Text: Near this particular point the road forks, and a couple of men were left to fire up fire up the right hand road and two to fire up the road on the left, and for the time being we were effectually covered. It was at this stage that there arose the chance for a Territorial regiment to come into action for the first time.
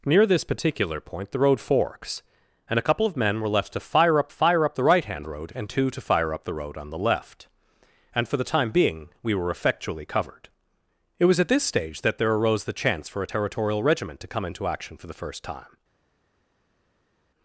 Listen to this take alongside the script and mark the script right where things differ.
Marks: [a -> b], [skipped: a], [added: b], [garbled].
Near this particular point the road forks, and a couple of men were left to fire up fire up the right hand road and two to fire up the road on the left, and for the time being we were effectually covered. It was at this stage that there arose the chance for a Territorial regiment to come into action for the first time.